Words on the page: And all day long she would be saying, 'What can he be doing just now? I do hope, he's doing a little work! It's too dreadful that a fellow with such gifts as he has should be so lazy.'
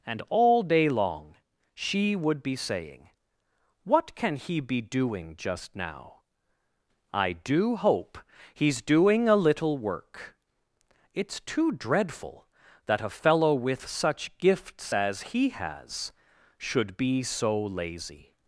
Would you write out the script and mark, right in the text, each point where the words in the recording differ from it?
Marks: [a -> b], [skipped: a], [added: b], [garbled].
And all day long she would be saying, 'What can he be doing just now? I do hope, he's doing a little work! It's too dreadful that a fellow with such gifts as he has should be so lazy.'